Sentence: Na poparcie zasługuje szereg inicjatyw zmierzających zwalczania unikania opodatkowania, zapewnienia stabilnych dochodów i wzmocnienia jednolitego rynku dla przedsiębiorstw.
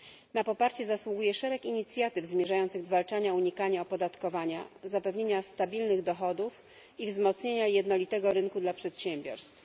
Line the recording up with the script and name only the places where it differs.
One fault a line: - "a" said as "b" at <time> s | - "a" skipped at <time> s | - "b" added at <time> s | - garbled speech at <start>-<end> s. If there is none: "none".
none